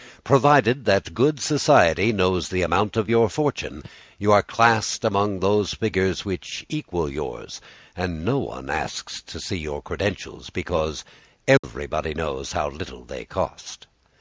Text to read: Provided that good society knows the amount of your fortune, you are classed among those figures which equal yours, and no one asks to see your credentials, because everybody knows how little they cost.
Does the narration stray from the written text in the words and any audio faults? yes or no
yes